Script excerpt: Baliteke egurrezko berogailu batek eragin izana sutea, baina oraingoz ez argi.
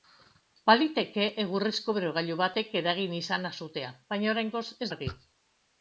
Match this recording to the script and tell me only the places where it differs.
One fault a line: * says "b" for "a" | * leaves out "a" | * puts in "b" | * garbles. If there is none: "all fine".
all fine